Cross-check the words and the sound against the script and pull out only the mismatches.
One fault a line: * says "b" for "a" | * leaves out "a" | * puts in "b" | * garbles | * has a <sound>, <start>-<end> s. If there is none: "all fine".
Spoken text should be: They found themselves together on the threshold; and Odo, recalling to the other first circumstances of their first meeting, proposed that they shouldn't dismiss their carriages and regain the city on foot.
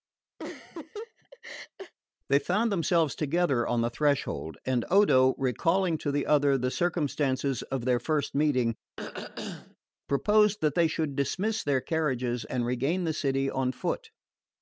* has a laugh, 0.4-1.9 s
* says "the" for "first"
* has a throat clearing, 9.0-9.8 s
* says "should" for "shouldn't"